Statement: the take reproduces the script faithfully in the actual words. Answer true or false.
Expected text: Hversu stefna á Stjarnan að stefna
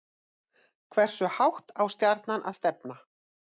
false